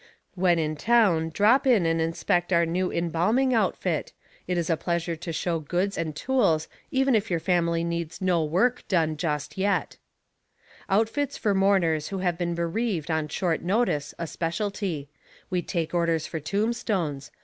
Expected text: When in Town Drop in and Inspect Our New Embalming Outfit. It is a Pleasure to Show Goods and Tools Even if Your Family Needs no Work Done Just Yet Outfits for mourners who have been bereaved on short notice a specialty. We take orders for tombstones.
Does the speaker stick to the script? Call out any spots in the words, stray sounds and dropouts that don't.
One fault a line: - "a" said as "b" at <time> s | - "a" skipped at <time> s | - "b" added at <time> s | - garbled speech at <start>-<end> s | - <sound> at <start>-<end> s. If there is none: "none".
none